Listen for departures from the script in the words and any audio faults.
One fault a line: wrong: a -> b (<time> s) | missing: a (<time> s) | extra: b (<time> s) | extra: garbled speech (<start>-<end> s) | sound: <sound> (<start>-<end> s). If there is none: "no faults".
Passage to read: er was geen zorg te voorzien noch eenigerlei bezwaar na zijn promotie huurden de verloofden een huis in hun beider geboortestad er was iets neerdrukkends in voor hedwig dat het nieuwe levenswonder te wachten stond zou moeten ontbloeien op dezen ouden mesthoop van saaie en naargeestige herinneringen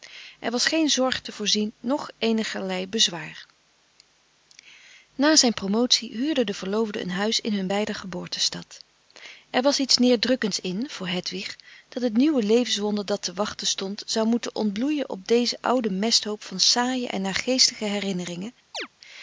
extra: dat (13.0 s)
sound: chirp (18.7-18.9 s)